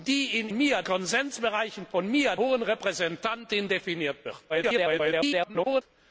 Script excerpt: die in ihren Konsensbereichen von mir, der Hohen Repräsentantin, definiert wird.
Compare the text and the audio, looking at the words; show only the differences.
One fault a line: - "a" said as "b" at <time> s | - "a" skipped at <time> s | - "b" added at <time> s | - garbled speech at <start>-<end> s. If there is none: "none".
- "ihren" said as "mir" at 0.5 s
- "der" skipped at 2.3 s
- garbled speech at 4.5-5.8 s